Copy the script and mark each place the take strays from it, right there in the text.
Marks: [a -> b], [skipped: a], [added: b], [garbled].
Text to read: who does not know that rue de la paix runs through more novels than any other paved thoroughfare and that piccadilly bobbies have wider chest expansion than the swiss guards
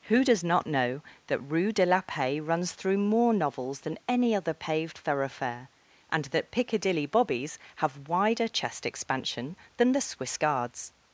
who does not know that rue de la paix runs through more novels than any other paved thoroughfare and that piccadilly bobbies have wider chest expansion than the swiss guards